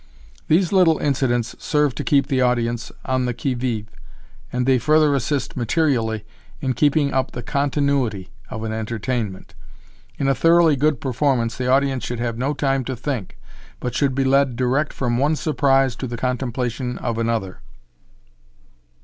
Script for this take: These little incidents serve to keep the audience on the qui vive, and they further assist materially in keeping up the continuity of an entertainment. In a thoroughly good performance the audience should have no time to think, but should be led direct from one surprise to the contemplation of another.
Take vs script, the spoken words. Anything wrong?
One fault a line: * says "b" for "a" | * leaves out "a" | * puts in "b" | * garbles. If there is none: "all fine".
all fine